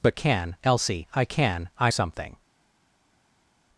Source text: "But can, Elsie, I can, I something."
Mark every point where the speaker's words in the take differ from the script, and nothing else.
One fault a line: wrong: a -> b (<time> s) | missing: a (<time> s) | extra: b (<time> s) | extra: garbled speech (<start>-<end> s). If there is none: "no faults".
no faults